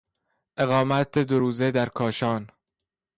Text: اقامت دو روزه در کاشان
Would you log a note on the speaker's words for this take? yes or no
no